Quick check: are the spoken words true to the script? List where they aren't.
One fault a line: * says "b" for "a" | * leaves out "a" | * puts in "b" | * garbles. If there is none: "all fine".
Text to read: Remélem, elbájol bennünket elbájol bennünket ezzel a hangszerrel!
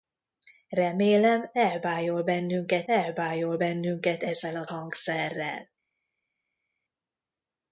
all fine